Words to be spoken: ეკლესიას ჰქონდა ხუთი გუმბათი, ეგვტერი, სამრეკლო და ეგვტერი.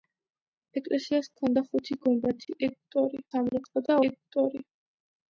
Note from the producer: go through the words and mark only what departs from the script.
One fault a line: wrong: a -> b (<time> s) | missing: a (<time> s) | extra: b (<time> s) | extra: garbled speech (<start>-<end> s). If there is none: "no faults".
no faults